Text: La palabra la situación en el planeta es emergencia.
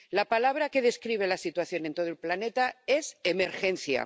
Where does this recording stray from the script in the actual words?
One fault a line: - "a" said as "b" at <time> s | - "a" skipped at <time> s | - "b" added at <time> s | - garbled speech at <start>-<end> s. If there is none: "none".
- "que describe" added at 0.7 s
- "todo" added at 1.9 s